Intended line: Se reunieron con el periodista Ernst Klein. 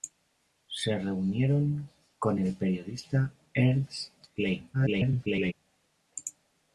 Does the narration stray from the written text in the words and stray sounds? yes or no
yes